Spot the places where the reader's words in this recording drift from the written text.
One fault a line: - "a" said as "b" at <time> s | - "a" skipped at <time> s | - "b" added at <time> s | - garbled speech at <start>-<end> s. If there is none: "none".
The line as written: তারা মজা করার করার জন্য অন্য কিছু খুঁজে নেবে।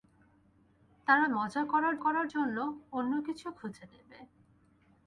none